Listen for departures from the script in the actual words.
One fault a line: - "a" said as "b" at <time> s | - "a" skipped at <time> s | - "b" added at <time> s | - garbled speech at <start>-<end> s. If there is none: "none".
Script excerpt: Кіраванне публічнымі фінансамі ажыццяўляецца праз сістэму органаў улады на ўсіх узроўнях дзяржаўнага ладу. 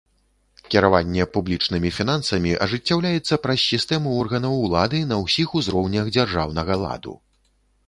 none